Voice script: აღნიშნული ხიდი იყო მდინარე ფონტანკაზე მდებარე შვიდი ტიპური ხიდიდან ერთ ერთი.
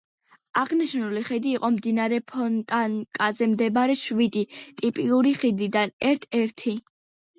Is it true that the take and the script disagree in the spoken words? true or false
false